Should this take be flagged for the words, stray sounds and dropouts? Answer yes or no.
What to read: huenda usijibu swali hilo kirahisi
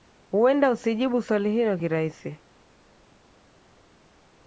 no